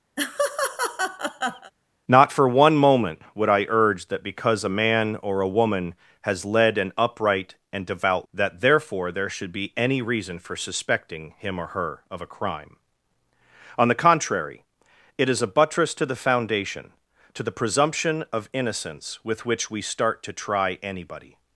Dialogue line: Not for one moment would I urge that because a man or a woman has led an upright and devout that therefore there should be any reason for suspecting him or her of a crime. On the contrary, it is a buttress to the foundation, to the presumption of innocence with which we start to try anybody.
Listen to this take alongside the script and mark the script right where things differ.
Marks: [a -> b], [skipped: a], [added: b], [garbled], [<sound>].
[laugh] Not for one moment would I urge that because a man or a woman has led an upright and devout that therefore there should be any reason for suspecting him or her of a crime. On the contrary, it is a buttress to the foundation, to the presumption of innocence with which we start to try anybody.